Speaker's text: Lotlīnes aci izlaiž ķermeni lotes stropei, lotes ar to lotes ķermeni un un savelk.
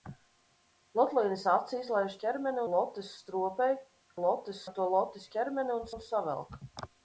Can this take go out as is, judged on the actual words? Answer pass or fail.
pass